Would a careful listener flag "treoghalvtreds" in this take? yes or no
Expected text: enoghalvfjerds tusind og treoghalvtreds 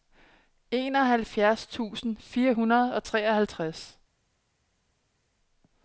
no